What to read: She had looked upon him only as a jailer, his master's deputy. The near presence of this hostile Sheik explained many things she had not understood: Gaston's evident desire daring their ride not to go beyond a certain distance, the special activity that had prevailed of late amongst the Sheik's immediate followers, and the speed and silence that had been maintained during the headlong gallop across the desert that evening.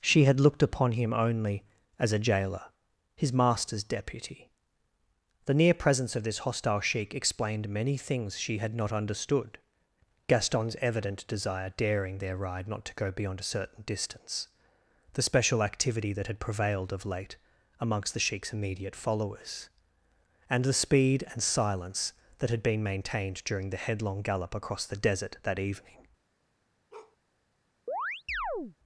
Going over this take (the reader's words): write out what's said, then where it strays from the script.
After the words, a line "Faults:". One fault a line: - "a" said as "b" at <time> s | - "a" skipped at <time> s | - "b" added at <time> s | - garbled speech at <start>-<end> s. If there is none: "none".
She had looked upon him only as a jailer, his master's deputy. The near presence of this hostile Sheik explained many things she had not understood: Gaston's evident desire daring their ride not to go beyond a certain distance, the special activity that had prevailed of late amongst the Sheik's immediate followers, and the speed and silence that had been maintained during the headlong gallop across the desert that evening.
Faults:
none